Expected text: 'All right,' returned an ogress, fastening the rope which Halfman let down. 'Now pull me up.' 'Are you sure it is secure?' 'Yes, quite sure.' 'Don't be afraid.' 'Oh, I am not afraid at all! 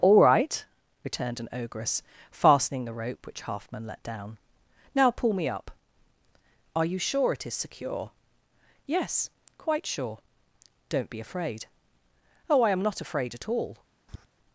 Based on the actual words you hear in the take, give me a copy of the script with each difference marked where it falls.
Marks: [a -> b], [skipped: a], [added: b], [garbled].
'All right,' returned an ogress, fastening the rope which Halfman let down. 'Now pull me up.' 'Are you sure it is secure?' 'Yes, quite sure.' 'Don't be afraid.' 'Oh, I am not afraid at all!